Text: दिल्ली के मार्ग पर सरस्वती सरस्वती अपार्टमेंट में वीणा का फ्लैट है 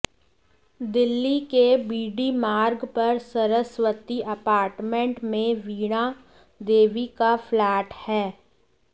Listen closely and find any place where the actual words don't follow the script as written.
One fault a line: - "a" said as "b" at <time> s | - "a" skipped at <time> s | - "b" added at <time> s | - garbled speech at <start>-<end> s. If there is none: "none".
- "बीडी" added at 1.9 s
- "सरस्वती" skipped at 4.2 s
- "देवी" added at 6.6 s